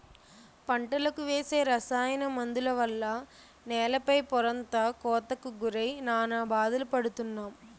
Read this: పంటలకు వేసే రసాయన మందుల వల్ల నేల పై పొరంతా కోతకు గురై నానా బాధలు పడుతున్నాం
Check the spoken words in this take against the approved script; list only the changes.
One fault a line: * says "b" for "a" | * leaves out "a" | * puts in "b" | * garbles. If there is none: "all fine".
all fine